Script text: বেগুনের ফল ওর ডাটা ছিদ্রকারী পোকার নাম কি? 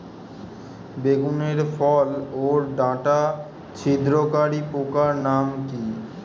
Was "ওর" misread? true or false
false